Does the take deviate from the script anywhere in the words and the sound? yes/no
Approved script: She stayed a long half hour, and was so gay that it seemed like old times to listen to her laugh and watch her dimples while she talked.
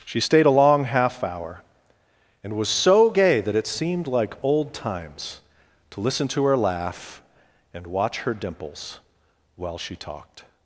no